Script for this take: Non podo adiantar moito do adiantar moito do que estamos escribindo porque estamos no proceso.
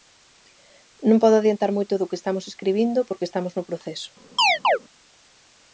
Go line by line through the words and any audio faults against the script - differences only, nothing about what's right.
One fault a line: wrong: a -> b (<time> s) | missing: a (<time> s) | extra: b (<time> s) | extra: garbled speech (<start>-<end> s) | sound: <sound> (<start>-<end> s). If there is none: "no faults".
missing: adiantar moito do (2.1 s)
sound: chirp (4.4-4.8 s)